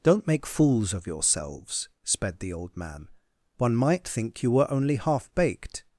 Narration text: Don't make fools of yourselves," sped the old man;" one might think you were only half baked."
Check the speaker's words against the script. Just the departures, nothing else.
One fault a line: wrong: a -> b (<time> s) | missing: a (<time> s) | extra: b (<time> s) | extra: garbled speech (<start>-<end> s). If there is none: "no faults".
no faults